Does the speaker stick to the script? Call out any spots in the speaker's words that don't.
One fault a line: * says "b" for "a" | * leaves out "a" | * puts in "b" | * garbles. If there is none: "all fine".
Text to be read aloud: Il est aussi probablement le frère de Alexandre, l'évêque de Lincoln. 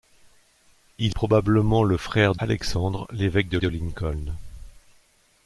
* leaves out "est aussi"
* leaves out "de"
* puts in "de"